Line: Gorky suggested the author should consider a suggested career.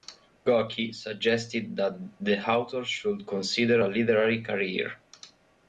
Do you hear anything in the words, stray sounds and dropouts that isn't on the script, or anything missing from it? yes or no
yes